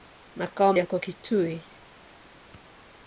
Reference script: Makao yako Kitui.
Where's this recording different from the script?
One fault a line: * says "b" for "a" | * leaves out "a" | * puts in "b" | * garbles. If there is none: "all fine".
all fine